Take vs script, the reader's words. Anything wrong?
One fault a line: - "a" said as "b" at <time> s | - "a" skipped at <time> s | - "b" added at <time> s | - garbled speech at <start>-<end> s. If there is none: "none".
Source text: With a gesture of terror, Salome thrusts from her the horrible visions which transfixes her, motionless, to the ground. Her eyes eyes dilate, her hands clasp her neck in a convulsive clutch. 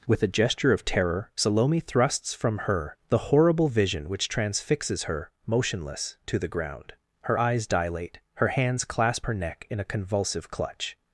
- "visions" said as "vision" at 3.7 s
- "eyes" skipped at 7.7 s